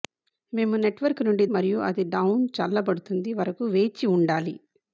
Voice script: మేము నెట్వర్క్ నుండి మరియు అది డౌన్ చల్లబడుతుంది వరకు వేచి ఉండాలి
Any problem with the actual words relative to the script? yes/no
no